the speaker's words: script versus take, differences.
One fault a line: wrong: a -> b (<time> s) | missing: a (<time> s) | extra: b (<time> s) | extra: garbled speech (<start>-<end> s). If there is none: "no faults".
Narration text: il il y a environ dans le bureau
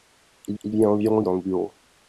no faults